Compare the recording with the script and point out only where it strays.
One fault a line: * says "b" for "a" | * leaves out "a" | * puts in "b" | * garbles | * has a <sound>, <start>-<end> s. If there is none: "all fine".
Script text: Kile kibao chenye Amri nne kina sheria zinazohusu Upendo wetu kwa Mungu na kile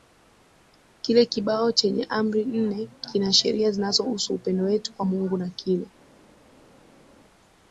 all fine